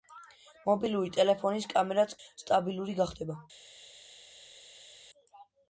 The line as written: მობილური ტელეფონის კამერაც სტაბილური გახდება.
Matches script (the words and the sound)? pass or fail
pass